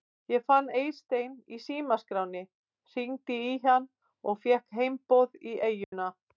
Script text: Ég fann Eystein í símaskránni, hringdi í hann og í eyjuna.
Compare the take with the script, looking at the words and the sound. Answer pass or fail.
fail